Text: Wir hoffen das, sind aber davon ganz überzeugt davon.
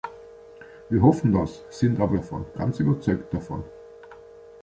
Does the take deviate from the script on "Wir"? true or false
false